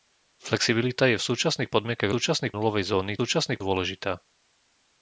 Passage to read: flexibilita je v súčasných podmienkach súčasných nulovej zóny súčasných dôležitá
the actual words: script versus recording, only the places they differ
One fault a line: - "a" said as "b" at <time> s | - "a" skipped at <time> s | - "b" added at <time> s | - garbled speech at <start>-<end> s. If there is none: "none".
none